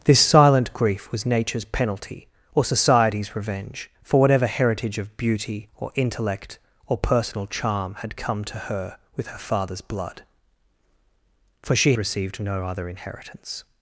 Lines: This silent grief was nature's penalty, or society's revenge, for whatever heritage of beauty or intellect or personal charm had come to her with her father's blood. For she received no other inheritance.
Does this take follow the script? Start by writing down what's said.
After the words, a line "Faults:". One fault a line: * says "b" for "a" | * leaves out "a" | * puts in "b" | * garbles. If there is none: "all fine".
This silent grief was nature's penalty, or society's revenge, for whatever heritage of beauty or intellect or personal charm had come to her with her father's blood. For she received no other inheritance.
Faults:
all fine